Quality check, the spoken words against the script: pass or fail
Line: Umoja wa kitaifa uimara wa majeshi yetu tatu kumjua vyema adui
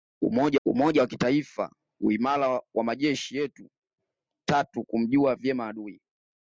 fail